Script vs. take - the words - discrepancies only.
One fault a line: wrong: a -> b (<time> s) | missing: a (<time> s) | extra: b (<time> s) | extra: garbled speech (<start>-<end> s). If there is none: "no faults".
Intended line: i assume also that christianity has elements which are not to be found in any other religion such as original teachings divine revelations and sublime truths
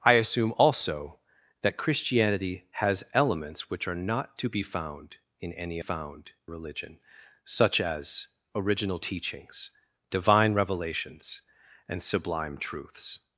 wrong: other -> found (5.8 s)